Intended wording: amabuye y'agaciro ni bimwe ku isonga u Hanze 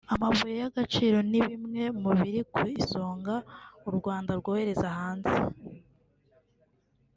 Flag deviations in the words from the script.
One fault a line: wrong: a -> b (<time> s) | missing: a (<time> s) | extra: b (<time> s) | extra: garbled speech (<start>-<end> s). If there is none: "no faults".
extra: mu biri (2.0 s)
extra: Rwanda rwohereza (4.0 s)